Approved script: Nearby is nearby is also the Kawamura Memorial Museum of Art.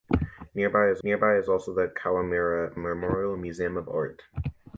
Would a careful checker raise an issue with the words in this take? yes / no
no